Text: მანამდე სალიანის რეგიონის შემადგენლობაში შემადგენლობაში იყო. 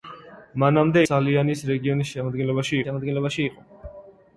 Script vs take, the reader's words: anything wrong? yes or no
no